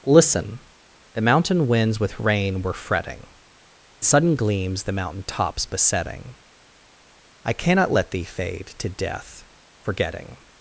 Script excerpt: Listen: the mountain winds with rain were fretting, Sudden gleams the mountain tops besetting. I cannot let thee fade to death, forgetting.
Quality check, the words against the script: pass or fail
pass